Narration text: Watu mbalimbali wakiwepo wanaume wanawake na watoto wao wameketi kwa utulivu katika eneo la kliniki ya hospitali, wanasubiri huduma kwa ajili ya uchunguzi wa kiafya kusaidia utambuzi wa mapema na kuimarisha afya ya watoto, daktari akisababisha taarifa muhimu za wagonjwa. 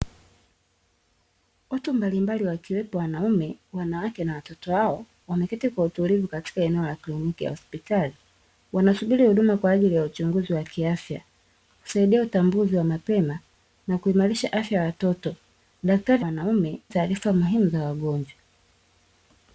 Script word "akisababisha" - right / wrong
wrong